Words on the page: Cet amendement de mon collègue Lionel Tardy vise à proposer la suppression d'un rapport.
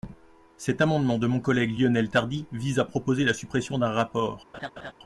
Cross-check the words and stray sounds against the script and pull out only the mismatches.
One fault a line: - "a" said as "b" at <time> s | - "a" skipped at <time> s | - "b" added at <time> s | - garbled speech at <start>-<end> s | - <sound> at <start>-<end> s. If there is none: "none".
- laugh at 4.5-4.9 s